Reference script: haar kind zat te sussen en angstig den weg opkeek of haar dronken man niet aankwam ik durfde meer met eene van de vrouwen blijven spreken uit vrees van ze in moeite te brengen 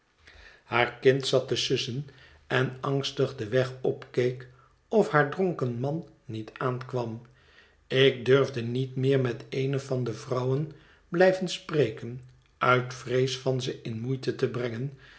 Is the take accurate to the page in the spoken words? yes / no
no